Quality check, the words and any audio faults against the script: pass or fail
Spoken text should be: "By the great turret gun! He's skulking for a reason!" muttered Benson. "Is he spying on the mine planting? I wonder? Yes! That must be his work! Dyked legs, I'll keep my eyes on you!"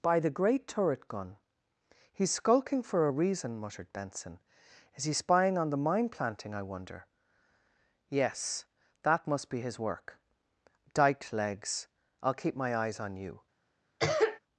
fail